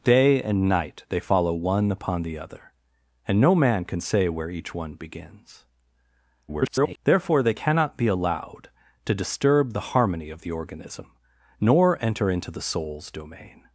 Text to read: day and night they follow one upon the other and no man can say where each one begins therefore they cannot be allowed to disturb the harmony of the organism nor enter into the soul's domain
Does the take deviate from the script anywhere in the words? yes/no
yes